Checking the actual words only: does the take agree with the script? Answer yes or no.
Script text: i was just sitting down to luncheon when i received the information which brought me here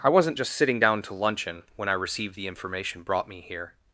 no